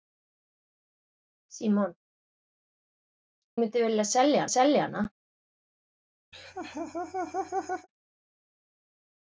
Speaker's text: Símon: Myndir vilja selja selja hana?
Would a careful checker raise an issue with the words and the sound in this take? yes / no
yes